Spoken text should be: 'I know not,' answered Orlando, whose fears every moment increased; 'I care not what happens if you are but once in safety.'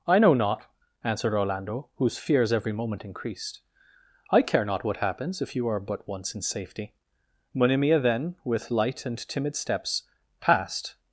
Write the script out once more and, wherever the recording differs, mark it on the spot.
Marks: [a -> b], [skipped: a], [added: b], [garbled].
'I know not,' answered Orlando, whose fears every moment increased; 'I care not what happens if you are but once in safety.' [added: Monimia then with light and timid steps passed]